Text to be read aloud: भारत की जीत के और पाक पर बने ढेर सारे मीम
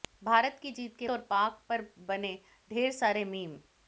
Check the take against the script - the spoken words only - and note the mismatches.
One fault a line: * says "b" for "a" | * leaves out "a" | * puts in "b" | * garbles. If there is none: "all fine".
all fine